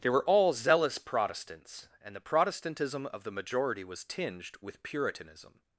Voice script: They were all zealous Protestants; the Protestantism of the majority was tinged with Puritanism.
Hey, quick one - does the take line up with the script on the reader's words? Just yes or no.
no